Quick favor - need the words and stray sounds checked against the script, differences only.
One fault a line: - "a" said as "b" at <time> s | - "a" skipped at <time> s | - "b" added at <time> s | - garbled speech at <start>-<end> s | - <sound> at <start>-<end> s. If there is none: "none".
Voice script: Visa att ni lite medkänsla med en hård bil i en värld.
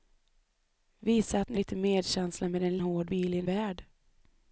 none